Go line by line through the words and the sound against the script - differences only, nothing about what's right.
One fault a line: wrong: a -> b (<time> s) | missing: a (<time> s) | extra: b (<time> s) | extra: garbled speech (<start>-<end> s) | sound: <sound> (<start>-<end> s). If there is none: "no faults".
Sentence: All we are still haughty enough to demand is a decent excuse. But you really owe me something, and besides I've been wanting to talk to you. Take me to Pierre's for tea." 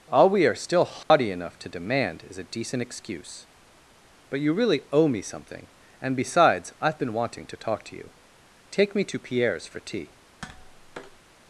sound: dropout (1.0-1.1 s)
sound: tap (10.4-11.2 s)